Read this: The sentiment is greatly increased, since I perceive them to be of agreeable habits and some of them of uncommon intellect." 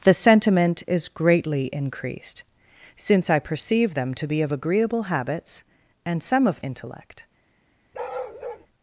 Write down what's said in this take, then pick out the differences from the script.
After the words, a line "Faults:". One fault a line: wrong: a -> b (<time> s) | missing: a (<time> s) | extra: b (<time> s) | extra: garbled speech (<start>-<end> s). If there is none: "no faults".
The sentiment is greatly increased, since I perceive them to be of agreeable habits and some of intellect."
Faults:
missing: them of uncommon (6.6 s)